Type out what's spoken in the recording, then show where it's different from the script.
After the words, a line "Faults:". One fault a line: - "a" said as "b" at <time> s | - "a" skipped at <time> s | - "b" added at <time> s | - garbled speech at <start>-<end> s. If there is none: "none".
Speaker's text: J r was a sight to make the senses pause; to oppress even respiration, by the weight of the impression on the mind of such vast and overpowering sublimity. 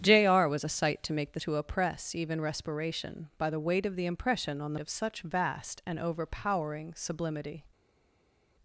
J r was a sight to make the; to oppress even respiration, by the weight of the impression on the of such vast and overpowering sublimity.
Faults:
- "senses pause" skipped at 1.4 s
- "mind" skipped at 4.8 s